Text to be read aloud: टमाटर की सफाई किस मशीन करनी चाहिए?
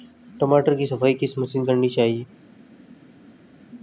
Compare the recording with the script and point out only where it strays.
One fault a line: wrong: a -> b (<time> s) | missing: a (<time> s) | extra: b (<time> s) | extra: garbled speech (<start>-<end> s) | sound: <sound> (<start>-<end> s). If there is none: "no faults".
no faults